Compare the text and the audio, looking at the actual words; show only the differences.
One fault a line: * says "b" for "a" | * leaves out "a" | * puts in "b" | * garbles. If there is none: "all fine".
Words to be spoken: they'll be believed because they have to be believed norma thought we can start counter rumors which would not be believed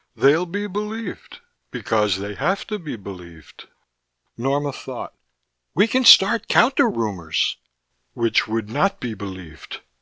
all fine